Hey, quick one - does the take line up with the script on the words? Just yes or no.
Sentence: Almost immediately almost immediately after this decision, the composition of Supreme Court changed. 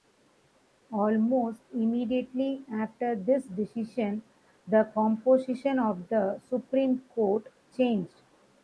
no